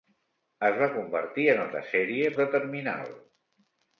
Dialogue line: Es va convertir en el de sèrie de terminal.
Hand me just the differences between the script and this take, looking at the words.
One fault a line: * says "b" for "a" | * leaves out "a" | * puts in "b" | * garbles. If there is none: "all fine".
all fine